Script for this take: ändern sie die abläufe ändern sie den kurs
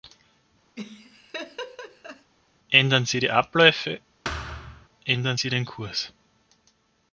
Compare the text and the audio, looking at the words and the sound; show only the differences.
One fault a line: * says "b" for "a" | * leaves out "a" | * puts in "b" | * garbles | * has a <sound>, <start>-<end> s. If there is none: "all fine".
* has a laugh, 0.8-2.3 s
* has a thud, 4.2-4.9 s